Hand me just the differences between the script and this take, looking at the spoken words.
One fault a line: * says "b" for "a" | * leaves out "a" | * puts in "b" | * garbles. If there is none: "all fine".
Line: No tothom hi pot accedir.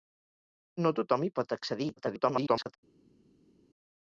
* garbles